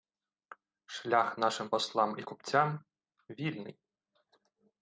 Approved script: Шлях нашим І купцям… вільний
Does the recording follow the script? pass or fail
fail